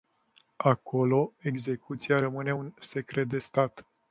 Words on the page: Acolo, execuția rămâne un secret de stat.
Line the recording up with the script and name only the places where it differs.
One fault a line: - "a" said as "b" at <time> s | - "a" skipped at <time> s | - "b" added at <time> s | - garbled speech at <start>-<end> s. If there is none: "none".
none